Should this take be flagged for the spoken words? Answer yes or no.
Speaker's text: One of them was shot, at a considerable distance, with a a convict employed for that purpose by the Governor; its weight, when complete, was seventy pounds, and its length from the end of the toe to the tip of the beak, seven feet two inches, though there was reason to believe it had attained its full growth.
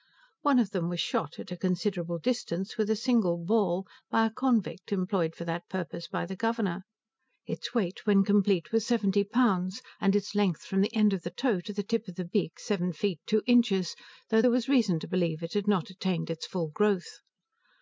yes